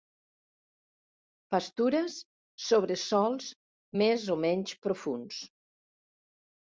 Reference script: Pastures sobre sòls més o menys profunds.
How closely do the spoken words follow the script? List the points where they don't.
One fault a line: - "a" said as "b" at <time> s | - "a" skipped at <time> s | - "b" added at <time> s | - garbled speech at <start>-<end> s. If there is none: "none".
none